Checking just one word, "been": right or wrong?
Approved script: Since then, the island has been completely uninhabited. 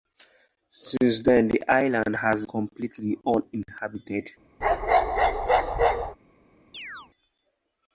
wrong